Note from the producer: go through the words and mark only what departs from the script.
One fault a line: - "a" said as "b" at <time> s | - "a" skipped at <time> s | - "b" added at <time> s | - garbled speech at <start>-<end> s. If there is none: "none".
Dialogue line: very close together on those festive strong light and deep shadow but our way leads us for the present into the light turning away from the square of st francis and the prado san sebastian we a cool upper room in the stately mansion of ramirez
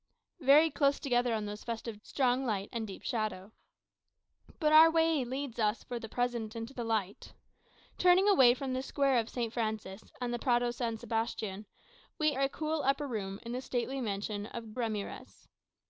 none